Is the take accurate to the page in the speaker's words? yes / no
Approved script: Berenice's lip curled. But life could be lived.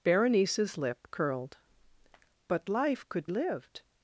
no